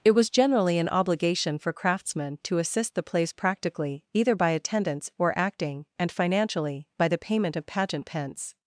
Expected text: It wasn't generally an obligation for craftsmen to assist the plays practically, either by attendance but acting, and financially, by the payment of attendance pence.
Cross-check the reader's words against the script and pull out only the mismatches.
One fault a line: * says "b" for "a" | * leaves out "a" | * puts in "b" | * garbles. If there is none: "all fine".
* says "was" for "wasn't"
* says "or" for "but"
* says "pageant" for "attendance"